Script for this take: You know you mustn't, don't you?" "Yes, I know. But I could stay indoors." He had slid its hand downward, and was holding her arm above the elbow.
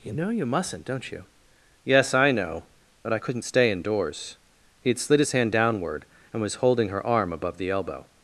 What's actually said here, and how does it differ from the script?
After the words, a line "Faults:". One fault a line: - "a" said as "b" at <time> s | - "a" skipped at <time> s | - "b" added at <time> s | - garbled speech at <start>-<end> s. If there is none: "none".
You know you mustn't, don't you?" "Yes, I know. But I couldn't stay indoors." He had slid his hand downward, and was holding her arm above the elbow.
Faults:
- "could" said as "couldn't" at 3.2 s
- "its" said as "his" at 5.2 s